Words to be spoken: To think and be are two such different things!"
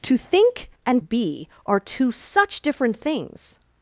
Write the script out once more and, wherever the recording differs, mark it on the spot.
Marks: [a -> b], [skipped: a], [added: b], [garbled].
To think and be are two such different things!"